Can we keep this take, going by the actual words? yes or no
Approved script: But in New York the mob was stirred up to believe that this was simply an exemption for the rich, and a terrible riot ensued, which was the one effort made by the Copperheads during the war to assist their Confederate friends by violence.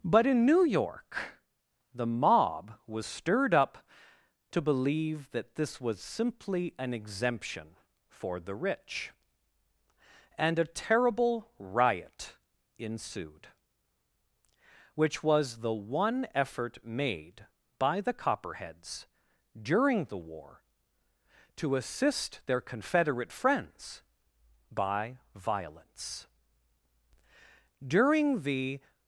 no